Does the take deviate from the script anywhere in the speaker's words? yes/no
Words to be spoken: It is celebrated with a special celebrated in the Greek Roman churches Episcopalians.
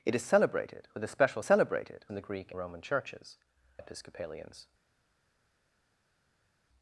no